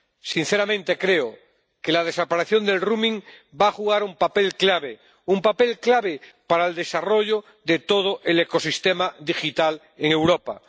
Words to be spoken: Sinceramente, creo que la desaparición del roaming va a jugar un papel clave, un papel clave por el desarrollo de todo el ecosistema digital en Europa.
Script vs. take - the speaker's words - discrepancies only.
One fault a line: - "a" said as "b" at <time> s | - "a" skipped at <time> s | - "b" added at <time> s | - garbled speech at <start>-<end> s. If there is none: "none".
- "por" said as "para" at 6.5 s